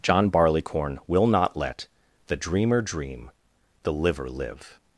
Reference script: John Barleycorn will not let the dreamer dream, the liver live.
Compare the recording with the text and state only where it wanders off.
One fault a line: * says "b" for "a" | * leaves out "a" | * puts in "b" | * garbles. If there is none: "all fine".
all fine